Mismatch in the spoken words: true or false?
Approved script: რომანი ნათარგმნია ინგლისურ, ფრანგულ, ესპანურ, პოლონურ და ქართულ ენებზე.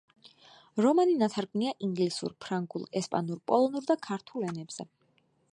false